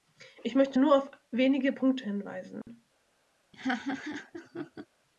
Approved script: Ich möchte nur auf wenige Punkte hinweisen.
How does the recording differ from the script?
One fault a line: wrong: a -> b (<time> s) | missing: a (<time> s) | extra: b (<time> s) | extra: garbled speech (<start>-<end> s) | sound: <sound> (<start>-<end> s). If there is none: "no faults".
sound: dropout (2.6-2.7 s)
sound: laugh (3.5-4.9 s)